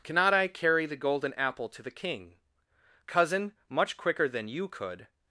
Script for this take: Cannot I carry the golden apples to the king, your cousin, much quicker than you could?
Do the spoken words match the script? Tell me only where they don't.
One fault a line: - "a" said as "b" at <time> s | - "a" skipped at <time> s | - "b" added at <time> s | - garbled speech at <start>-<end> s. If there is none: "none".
- "apples" said as "apple" at 1.4 s
- "your" skipped at 2.4 s